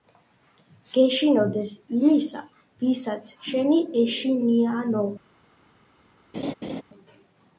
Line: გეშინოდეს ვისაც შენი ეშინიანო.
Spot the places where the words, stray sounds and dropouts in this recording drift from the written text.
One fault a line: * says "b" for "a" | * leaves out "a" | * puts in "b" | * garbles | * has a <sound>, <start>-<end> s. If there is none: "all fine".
* puts in "იმისა"
* has a laugh, 6.3-6.8 s